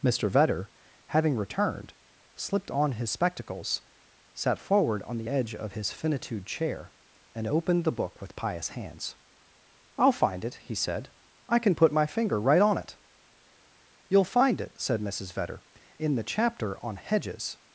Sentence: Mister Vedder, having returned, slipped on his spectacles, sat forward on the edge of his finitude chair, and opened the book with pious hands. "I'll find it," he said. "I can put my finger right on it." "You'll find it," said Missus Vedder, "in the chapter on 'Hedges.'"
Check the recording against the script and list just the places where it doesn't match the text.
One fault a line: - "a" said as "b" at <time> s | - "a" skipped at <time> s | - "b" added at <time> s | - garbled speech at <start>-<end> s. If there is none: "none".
none